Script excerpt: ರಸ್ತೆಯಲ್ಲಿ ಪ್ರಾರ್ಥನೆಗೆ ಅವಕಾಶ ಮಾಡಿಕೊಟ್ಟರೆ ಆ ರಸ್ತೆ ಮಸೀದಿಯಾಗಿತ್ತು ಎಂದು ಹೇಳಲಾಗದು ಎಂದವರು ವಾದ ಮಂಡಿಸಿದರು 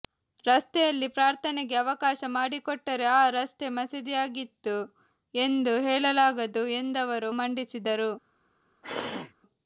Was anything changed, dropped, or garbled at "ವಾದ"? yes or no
yes